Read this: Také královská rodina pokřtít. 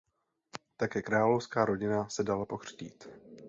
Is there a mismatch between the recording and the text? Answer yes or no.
yes